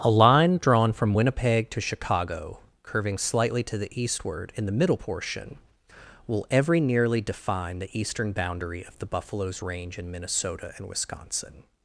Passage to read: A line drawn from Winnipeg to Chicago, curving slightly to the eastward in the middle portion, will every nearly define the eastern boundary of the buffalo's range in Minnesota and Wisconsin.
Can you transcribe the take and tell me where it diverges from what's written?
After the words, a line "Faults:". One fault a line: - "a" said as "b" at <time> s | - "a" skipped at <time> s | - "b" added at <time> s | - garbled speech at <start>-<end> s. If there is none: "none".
A line drawn from Winnipeg to Chicago, curving slightly to the eastward in the middle portion, will every nearly define the eastern boundary of the buffalo's range in Minnesota and Wisconsin.
Faults:
none